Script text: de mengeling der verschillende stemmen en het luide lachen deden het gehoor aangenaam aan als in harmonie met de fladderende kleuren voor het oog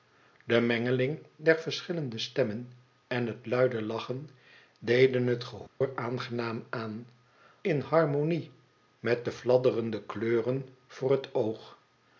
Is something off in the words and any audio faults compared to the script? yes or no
yes